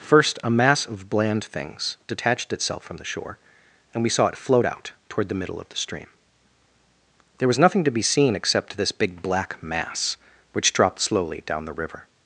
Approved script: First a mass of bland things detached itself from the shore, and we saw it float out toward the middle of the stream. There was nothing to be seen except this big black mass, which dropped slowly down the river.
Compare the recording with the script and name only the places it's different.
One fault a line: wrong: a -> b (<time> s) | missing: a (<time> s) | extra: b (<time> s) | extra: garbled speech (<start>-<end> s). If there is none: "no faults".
no faults